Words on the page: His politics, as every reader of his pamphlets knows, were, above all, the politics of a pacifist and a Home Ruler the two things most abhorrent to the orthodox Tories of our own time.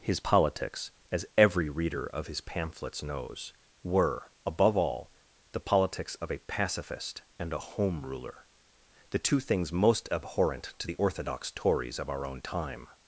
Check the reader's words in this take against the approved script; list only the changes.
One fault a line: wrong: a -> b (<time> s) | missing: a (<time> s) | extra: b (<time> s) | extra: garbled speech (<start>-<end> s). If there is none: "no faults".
no faults